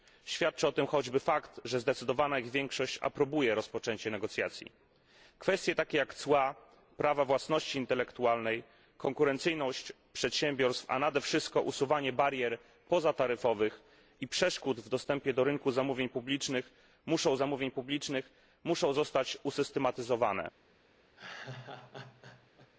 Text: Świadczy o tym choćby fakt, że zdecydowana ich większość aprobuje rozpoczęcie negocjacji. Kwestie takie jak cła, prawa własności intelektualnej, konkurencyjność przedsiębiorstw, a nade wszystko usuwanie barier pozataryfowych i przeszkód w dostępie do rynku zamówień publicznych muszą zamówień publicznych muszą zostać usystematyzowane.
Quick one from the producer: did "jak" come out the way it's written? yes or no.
yes